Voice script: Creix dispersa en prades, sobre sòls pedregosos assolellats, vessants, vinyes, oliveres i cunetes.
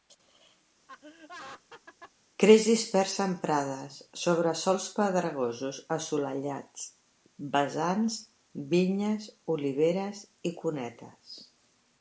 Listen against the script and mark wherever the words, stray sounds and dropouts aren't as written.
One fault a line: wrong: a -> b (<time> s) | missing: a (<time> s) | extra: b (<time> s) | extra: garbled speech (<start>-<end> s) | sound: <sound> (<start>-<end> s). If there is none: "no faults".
sound: laugh (0.9-2.1 s)